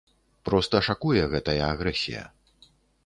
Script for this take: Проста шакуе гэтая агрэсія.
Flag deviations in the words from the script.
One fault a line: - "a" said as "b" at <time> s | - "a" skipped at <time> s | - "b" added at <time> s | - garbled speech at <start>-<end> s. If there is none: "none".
none